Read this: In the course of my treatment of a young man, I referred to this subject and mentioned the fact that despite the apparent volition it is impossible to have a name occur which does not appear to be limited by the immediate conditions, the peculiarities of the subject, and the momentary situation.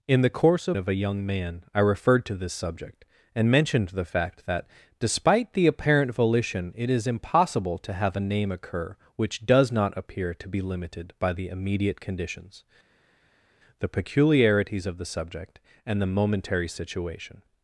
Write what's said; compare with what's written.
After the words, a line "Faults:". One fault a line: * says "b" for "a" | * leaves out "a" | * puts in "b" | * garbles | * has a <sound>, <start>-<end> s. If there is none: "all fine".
In the course of of a young man, I referred to this subject and mentioned the fact that despite the apparent volition it is impossible to have a name occur which does not appear to be limited by the immediate conditions, the peculiarities of the subject, and the momentary situation.
Faults:
* leaves out "my treatment"